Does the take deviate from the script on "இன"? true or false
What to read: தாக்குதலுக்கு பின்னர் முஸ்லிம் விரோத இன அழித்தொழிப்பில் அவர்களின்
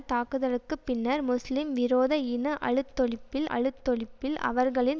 false